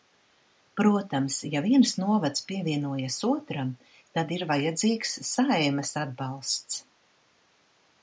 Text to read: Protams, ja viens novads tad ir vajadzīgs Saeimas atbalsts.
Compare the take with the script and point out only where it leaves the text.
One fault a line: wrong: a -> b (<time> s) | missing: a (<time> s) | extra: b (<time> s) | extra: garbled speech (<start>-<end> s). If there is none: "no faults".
extra: pievienojas otram (2.5 s)